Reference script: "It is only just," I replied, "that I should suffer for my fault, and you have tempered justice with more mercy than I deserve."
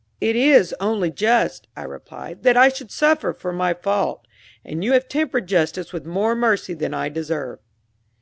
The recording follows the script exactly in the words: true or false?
true